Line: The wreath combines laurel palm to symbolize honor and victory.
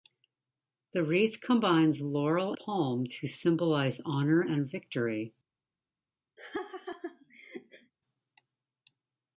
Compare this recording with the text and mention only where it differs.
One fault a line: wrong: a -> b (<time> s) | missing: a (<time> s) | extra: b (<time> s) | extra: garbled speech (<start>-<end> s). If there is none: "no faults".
no faults